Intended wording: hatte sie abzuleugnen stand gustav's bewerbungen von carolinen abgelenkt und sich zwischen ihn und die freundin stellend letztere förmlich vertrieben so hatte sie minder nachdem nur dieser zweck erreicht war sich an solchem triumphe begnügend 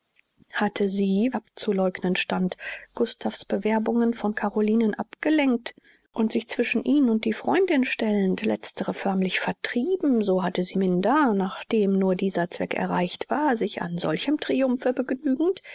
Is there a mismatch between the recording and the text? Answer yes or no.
no